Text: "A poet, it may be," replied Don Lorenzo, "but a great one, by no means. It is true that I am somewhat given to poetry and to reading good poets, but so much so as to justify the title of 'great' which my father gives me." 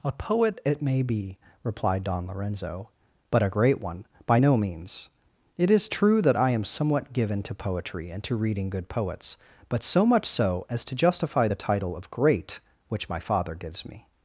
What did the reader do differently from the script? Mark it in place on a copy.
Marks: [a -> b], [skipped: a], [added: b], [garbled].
"A poet, it may be," replied Don Lorenzo, "but a great one, by no means. It is true that I am somewhat given to poetry and to reading good poets, but so much so as to justify the title of 'great' which my father gives me."